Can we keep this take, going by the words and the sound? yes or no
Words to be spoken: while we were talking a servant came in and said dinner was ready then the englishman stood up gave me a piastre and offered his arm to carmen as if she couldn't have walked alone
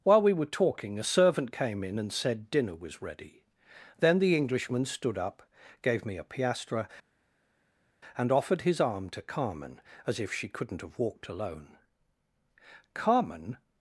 no